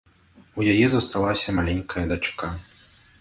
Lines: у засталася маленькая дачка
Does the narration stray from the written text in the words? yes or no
yes